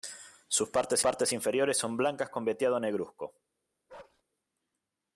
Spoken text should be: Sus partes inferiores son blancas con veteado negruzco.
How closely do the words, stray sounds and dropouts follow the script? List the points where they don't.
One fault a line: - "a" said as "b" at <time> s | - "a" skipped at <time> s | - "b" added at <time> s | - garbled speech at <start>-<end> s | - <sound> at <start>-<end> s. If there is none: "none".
- "partes" added at 1.0 s
- bark at 3.9-4.2 s